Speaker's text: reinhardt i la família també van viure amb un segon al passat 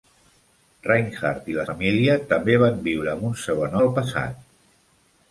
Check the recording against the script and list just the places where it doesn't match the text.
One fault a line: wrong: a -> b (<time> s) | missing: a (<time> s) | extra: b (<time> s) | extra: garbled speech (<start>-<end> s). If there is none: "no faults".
no faults